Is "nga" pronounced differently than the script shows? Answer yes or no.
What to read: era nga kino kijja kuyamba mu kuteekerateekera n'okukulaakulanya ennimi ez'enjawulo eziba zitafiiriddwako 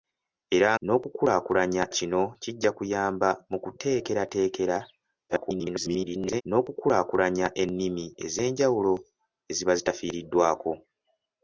yes